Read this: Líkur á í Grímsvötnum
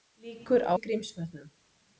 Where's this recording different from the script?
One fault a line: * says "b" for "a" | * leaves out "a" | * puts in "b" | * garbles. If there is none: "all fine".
all fine